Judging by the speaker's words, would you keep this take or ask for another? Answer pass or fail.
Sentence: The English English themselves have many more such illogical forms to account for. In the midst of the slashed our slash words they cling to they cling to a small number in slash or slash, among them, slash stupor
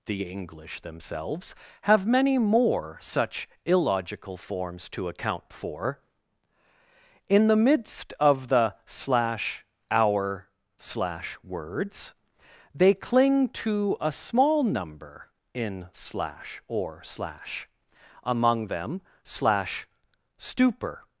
fail